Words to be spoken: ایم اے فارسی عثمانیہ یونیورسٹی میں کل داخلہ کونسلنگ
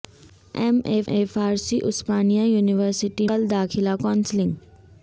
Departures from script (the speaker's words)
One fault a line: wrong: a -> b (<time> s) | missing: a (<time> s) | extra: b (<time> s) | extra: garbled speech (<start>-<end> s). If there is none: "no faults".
extra: اے (1.1 s)
missing: میں (3.3 s)